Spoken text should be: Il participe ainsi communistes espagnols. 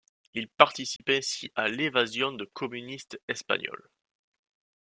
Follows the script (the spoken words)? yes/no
no